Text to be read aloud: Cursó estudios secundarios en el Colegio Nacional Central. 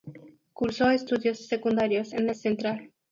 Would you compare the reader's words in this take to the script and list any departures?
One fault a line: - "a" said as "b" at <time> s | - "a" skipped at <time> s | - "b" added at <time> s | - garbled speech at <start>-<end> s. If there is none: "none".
- "el Colegio Nacional" skipped at 2.3 s